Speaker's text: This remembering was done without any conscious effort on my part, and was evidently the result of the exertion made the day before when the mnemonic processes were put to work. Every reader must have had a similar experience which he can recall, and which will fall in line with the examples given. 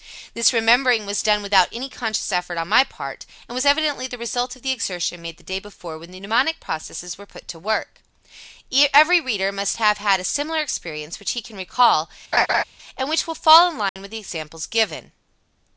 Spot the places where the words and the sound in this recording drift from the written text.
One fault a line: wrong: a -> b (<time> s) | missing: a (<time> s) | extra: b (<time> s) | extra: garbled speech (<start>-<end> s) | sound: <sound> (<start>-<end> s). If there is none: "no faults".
sound: laugh (12.3-12.6 s)
sound: dropout (13.9-14.0 s)